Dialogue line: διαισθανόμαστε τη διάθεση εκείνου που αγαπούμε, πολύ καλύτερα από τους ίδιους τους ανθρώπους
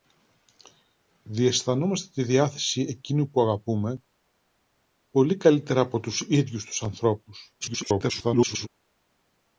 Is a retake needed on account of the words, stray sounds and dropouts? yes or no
yes